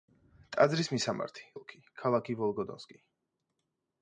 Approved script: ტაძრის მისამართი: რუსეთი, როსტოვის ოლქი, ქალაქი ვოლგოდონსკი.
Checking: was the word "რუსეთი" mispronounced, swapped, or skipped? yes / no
yes